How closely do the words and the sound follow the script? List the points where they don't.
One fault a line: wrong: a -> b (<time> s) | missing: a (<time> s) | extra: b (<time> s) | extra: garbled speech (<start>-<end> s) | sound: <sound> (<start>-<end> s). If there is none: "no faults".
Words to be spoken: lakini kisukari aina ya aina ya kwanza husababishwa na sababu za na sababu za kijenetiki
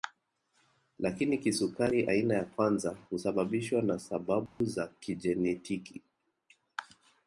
missing: aina ya (2.5 s)
sound: dropout (4.5-4.6 s)
missing: na sababu za (4.9 s)